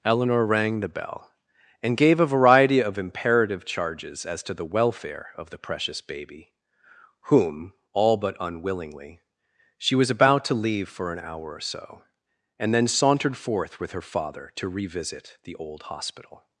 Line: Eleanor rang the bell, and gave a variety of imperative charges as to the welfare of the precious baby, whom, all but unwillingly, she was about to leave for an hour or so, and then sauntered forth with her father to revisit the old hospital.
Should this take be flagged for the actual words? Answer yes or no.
no